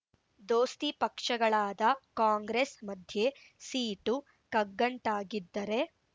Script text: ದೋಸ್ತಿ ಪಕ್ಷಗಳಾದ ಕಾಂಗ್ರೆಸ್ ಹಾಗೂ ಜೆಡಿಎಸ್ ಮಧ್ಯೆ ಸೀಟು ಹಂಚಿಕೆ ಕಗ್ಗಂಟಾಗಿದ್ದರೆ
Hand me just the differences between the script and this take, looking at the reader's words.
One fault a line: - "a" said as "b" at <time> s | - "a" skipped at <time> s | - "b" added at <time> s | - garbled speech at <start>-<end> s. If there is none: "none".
- "ಹಾಗೂ ಜೆಡಿಎಸ್" skipped at 2.7 s
- "ಹಂಚಿಕೆ" skipped at 4.2 s